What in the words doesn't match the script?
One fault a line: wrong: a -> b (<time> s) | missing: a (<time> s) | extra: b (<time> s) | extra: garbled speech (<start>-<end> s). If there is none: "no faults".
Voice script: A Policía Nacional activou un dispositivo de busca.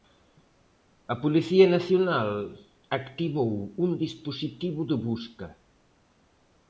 no faults